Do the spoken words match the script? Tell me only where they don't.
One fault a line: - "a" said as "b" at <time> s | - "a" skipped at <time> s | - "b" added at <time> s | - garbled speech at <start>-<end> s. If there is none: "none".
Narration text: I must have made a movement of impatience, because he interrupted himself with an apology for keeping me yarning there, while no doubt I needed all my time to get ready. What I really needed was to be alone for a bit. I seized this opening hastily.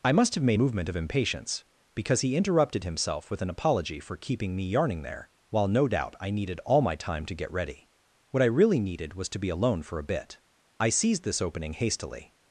- "a" skipped at 0.6 s